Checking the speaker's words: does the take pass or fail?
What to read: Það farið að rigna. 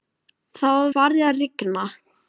pass